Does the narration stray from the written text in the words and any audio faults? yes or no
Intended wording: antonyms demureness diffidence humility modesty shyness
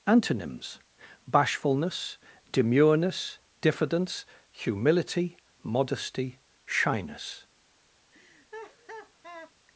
yes